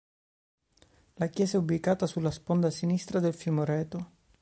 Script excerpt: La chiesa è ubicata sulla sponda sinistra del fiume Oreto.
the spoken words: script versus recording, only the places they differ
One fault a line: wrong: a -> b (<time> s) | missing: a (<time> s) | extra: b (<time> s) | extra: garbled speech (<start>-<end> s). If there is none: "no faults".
no faults